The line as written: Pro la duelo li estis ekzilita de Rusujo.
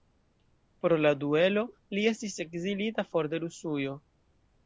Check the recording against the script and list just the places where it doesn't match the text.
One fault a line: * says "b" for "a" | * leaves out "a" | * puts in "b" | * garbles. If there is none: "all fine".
* puts in "for"